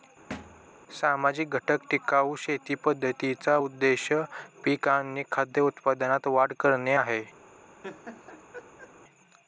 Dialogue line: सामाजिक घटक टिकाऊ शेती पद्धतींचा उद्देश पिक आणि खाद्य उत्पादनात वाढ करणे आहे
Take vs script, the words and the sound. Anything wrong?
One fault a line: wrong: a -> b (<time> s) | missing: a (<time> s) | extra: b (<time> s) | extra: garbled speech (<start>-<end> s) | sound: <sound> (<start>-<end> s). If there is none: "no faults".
sound: thud (0.3-0.7 s)
sound: laugh (7.8-8.9 s)